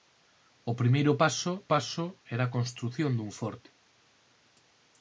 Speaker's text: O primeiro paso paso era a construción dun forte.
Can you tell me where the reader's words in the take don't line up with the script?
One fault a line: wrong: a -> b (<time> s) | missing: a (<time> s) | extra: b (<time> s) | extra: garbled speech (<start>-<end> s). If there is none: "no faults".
no faults